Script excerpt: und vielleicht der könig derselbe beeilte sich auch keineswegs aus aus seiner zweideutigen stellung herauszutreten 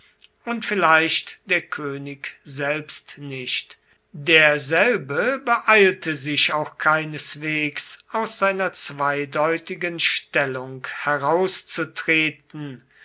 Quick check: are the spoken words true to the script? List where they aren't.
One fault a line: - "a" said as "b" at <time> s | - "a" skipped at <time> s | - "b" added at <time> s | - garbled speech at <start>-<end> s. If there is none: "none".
- "selbst nicht" added at 2.4 s
- "aus" skipped at 8.4 s